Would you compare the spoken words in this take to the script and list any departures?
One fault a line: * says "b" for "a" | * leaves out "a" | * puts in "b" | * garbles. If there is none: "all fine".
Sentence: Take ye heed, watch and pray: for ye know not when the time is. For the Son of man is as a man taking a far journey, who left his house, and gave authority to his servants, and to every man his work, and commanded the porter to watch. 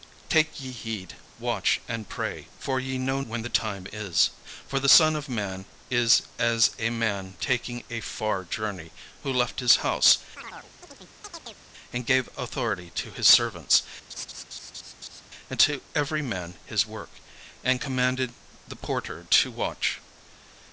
* leaves out "not"